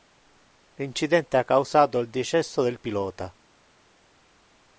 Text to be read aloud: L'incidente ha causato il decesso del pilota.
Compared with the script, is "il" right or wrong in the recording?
right